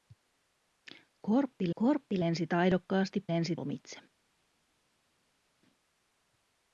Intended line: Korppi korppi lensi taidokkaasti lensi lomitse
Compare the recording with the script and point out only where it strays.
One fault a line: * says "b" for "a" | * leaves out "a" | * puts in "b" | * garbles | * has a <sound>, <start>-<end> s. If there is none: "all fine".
all fine